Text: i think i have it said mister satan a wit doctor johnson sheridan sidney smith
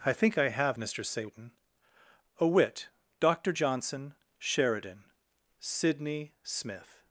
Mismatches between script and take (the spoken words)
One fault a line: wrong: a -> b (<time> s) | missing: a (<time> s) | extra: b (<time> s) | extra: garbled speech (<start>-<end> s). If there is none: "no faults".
missing: it said (0.8 s)